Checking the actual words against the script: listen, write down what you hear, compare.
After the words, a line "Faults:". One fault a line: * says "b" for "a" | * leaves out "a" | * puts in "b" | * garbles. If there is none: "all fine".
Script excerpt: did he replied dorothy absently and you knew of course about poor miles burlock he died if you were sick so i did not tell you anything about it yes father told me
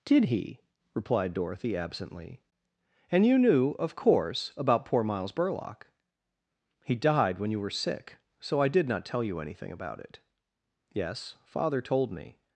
did he replied dorothy absently and you knew of course about poor miles burlock he died when you were sick so i did not tell you anything about it yes father told me
Faults:
* says "when" for "if"